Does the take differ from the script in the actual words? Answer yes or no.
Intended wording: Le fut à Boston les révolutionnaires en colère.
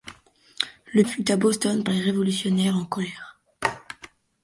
no